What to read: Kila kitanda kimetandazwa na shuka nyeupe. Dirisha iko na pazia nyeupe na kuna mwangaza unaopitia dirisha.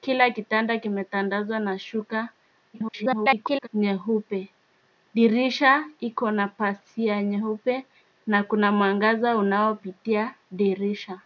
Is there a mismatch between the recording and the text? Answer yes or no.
yes